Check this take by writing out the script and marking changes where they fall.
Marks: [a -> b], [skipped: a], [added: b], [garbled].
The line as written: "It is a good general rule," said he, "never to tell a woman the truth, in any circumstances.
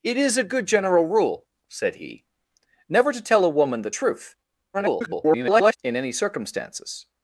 "It is a good general rule," said he, "never to tell a woman the truth, [garbled] in any circumstances.